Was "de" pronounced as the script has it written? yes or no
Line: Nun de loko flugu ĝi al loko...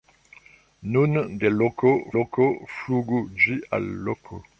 yes